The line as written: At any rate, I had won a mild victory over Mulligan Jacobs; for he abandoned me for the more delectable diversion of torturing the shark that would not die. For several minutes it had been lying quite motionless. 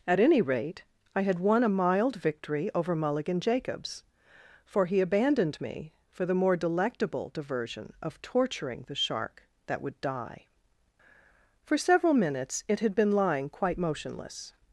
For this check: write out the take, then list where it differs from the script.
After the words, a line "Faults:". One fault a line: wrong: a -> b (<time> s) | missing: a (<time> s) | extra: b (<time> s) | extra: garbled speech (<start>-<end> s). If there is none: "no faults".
At any rate, I had won a mild victory over Mulligan Jacobs; for he abandoned me for the more delectable diversion of torturing the shark that would die. For several minutes it had been lying quite motionless.
Faults:
missing: not (10.0 s)